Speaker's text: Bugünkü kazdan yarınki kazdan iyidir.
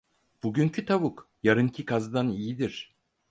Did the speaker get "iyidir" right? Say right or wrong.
right